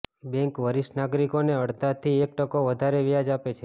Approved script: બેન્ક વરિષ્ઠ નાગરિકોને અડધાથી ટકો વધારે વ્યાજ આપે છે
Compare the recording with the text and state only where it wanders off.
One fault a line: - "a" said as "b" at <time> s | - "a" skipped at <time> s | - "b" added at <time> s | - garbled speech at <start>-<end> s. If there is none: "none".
- "એક" added at 2.2 s